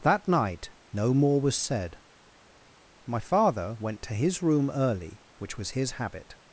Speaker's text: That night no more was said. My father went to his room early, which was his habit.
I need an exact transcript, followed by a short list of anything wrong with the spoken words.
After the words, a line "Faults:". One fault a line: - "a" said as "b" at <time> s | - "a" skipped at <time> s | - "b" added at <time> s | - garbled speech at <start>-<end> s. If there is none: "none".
That night no more was said. My father went to his room early, which was his habit.
Faults:
none